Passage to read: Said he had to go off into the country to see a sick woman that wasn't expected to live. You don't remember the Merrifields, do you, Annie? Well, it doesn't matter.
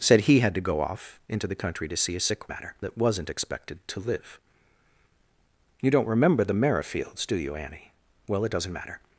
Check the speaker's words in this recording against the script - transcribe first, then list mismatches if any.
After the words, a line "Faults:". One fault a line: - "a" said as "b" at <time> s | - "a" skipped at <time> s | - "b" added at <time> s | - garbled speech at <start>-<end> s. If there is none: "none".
Said he had to go off into the country to see a sick matter that wasn't expected to live. You don't remember the Merrifields, do you, Annie? Well, it doesn't matter.
Faults:
- "woman" said as "matter" at 2.5 s